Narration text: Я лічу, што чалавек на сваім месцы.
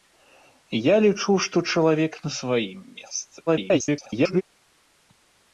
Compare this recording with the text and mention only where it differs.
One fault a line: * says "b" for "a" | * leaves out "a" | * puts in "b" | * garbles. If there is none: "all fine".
* garbles